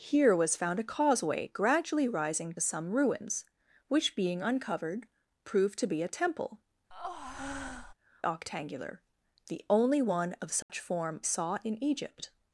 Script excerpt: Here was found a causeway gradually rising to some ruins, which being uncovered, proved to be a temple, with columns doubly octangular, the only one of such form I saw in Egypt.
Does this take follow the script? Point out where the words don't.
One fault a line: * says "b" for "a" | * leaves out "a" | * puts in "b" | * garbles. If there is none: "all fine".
* leaves out "to"
* leaves out "with columns doubly"
* leaves out "I"